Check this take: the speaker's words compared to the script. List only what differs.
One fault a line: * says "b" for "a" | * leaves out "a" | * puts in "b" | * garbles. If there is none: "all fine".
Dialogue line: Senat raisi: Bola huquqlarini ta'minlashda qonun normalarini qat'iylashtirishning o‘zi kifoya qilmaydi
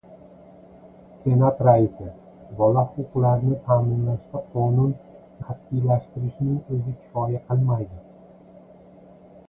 * leaves out "normalarini"